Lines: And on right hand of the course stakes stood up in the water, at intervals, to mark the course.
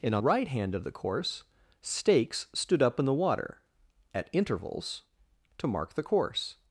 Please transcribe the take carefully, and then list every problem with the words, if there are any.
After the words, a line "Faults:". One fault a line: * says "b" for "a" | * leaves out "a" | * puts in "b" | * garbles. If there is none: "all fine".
And on right hand of the course stakes stood up in the water, at intervals, to mark the course.
Faults:
all fine